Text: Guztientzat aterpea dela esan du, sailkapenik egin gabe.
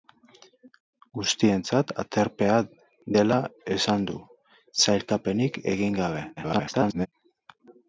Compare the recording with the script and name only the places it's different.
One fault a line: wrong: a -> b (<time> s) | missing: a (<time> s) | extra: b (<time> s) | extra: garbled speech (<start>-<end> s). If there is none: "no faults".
extra: garbled speech (6.4-7.1 s)